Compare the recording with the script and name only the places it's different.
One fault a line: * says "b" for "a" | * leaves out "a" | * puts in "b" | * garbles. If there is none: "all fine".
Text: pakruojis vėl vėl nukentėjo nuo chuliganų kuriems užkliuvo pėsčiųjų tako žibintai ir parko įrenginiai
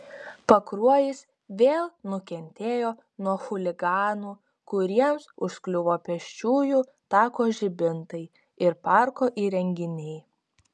* leaves out "vėl"